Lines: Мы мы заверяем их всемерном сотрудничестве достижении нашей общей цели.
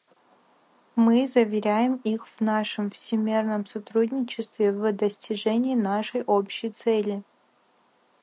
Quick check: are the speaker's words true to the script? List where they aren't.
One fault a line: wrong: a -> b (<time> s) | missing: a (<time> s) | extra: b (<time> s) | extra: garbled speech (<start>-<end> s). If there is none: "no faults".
missing: мы (1.3 s)
extra: в нашем (2.3 s)
extra: в (4.7 s)